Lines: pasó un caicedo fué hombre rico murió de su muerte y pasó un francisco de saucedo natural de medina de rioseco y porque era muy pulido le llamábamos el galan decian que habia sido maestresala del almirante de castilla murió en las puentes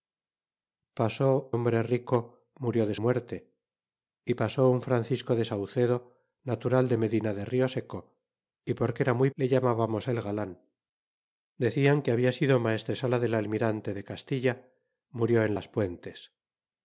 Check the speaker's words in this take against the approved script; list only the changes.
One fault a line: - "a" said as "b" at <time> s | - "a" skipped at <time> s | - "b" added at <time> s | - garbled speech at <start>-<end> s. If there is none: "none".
- "un caicedo fué" skipped at 1.5 s
- "su" skipped at 2.9 s
- "pulido" skipped at 9.3 s